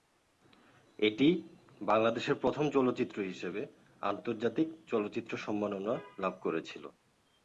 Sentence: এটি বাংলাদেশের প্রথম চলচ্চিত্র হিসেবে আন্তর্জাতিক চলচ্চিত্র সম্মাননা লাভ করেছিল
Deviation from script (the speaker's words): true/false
false